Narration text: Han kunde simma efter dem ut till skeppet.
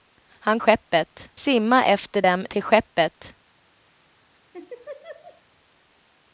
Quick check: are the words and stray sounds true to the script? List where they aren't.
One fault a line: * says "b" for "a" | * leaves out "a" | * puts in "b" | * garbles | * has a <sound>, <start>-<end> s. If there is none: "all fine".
* says "skeppet" for "kunde"
* leaves out "ut"
* has a laugh, 4.5-5.4 s